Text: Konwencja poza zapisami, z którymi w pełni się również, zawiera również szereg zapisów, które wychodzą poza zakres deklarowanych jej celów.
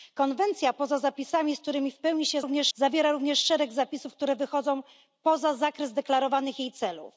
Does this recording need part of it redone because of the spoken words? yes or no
no